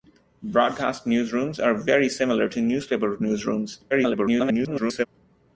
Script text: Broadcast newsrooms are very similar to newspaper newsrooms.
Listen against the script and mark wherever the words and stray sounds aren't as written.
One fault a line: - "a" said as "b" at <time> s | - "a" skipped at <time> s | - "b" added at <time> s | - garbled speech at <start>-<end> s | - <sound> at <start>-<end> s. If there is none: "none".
- garbled speech at 3.9-5.1 s